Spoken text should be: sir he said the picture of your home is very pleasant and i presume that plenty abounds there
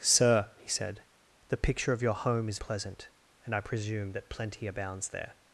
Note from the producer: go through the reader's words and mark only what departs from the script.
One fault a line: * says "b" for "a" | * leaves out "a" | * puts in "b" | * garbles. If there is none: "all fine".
* leaves out "very"